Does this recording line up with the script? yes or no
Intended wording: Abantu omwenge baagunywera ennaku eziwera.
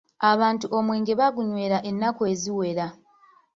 yes